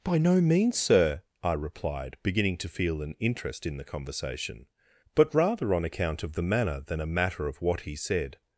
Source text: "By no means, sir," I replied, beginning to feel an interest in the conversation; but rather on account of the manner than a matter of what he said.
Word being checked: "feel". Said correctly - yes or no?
yes